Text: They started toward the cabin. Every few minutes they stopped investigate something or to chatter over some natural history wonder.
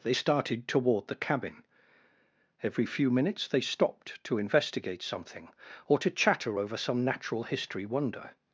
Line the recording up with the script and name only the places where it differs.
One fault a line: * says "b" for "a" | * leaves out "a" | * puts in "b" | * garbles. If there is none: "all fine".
* puts in "to"